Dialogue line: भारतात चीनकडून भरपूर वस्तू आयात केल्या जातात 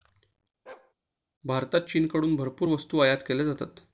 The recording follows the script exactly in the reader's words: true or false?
true